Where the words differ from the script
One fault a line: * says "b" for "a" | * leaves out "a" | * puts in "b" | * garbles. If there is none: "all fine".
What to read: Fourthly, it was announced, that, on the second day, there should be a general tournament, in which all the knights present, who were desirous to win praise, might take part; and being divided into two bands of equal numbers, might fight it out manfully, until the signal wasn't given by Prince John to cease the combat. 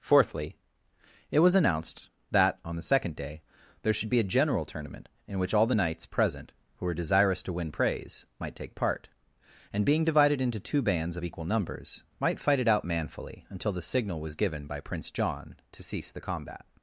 * says "was" for "wasn't"